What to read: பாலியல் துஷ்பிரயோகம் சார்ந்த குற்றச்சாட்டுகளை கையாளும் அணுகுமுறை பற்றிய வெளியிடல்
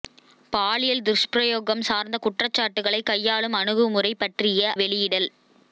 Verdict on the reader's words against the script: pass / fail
pass